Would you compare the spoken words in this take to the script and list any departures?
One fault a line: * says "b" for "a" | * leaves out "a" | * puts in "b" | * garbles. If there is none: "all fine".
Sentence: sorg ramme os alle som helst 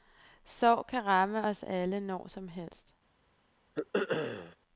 * puts in "kan"
* puts in "når"